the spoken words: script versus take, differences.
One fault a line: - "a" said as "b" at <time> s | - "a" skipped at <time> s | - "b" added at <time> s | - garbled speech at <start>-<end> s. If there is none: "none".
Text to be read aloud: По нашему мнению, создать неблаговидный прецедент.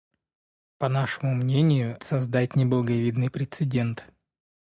none